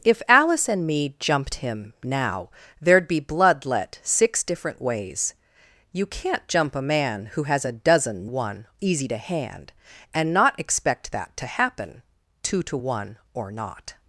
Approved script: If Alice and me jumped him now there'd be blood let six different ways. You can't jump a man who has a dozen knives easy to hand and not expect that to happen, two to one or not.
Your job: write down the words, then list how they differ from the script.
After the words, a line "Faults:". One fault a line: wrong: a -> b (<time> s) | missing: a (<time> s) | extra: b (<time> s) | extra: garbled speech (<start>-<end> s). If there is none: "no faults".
If Alice and me jumped him now there'd be blood let six different ways. You can't jump a man who has a dozen one easy to hand and not expect that to happen, two to one or not.
Faults:
wrong: knives -> one (8.2 s)